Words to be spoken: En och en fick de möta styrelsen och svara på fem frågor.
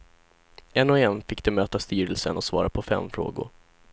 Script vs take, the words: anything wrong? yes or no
no